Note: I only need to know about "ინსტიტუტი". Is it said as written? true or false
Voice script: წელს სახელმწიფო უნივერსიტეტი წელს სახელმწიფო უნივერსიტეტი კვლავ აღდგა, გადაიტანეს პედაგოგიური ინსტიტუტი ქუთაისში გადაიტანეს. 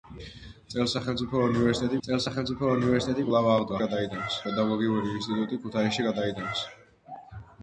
true